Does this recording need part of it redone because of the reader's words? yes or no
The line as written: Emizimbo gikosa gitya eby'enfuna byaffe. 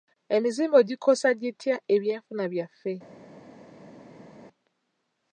no